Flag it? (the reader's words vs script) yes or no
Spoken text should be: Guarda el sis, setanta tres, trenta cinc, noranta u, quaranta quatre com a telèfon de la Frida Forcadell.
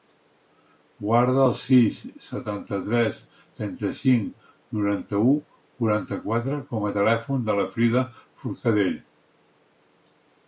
no